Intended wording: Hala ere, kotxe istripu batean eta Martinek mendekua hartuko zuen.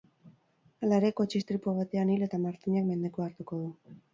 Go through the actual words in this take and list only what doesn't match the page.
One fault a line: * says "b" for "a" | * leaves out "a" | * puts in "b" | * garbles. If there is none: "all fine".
* puts in "hil"
* says "du" for "zuen"